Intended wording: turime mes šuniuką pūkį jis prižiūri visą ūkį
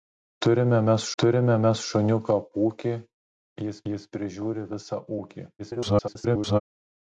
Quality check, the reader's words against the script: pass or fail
fail